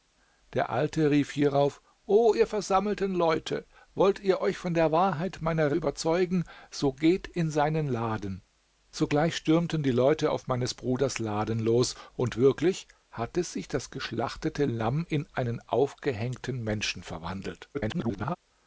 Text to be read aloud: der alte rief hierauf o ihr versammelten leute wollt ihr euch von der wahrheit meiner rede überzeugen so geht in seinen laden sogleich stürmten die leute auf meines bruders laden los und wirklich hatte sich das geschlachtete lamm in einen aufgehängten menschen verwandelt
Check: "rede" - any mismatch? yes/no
yes